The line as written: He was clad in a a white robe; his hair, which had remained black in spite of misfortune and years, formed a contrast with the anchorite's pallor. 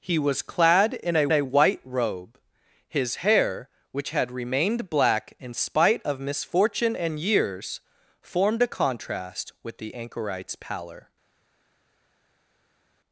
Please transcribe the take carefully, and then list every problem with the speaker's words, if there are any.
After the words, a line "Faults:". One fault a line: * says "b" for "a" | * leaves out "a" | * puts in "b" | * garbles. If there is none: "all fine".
He was clad in a a white robe; his hair, which had remained black in spite of misfortune and years, formed a contrast with the anchorite's pallor.
Faults:
all fine